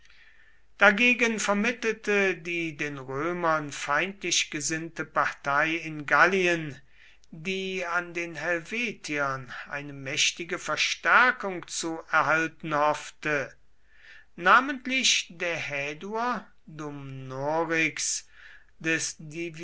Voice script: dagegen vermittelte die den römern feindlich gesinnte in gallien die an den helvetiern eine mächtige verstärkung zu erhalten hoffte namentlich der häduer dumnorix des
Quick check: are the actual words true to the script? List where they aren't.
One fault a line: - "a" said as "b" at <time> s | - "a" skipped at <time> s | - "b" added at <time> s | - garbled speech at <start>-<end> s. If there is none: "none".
- "partei" added at 5.0 s